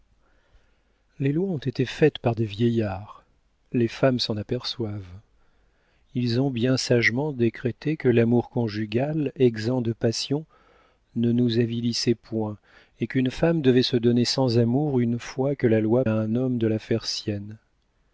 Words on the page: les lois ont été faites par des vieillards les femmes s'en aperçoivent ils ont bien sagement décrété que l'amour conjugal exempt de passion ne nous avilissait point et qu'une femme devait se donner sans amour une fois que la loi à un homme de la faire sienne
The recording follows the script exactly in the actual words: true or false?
true